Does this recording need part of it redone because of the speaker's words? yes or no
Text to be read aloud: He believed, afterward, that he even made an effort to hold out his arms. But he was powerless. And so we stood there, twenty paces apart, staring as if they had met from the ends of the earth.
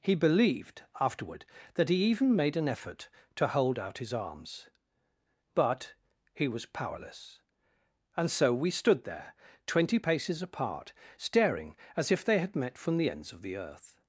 no